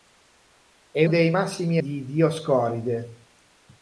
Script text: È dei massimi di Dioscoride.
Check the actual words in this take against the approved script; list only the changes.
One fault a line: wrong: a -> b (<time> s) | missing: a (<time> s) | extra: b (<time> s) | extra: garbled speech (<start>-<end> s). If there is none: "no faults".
no faults